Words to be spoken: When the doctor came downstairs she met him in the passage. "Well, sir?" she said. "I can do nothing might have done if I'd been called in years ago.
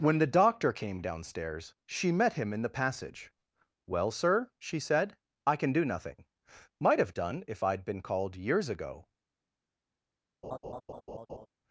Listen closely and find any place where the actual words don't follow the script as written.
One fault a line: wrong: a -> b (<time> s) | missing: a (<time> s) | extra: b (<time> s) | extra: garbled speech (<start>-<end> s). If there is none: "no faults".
missing: in (8.4 s)